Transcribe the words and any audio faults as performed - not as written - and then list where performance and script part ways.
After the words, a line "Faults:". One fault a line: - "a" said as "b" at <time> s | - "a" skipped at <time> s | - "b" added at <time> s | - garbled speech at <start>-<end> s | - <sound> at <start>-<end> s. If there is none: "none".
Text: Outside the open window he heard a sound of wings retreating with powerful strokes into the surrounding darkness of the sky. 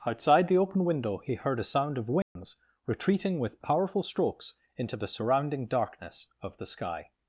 Outside the open window he heard a sound of wings retreating with powerful strokes into the surrounding darkness of the sky.
Faults:
- dropout at 2.2-2.4 s